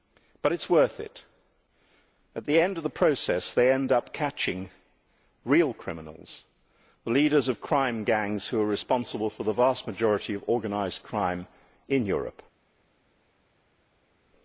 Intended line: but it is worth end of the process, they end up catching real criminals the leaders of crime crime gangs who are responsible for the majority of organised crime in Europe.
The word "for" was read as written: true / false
true